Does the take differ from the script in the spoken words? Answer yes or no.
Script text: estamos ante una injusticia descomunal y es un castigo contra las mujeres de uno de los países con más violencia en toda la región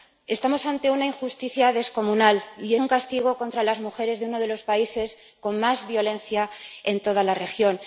yes